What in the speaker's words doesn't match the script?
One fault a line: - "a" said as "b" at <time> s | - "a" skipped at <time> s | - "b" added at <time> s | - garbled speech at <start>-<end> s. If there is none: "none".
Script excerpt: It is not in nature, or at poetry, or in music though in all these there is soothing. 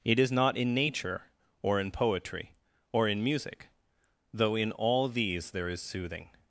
- "at" said as "in" at 1.8 s